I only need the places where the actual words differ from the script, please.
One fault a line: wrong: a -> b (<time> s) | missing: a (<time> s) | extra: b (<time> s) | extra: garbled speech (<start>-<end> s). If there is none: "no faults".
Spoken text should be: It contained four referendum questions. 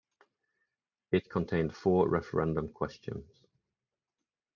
no faults